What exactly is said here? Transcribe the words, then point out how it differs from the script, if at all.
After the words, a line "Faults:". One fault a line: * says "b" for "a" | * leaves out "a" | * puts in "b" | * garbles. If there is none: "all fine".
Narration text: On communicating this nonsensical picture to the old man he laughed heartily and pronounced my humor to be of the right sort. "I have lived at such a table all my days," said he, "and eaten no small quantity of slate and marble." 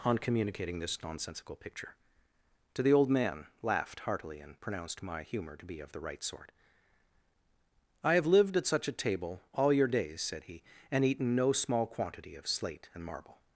On communicating this nonsensical picture to the old man laughed heartily and pronounced my humor to be of the right sort. "I have lived at such a table all your days," said he, "and eaten no small quantity of slate and marble."
Faults:
* leaves out "he"
* says "your" for "my"